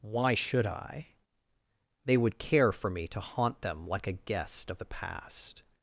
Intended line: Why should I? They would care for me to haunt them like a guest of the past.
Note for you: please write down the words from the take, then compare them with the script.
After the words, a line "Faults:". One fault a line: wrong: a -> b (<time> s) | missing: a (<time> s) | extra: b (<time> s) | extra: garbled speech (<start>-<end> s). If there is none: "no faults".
Why should I? They would care for me to haunt them like a guest of the past.
Faults:
no faults